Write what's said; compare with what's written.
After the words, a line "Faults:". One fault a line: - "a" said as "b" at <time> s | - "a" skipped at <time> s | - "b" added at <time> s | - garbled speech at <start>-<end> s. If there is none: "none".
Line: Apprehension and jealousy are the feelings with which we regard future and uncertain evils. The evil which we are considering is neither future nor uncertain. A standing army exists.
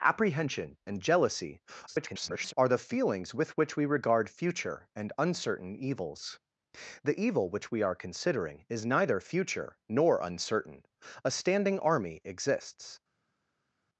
Apprehension and jealousy [garbled] are the feelings with which we regard future and uncertain evils. The evil which we are considering is neither future nor uncertain. A standing army exists.
Faults:
- garbled speech at 1.9-2.5 s